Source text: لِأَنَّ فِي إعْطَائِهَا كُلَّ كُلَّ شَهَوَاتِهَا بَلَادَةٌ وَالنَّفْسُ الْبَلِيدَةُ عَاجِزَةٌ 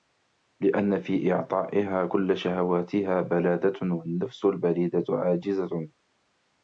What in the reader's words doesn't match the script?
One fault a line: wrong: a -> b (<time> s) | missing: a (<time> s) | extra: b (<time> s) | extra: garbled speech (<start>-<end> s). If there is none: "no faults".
missing: كُلَّ (2.4 s)